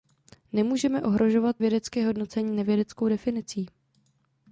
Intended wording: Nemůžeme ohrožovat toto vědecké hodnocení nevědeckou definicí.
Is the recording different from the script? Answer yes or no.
yes